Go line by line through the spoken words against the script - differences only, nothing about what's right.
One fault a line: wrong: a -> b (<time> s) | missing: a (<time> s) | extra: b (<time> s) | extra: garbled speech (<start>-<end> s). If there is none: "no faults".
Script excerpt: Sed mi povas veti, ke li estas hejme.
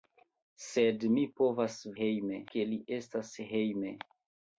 wrong: veti -> hejme (2.0 s)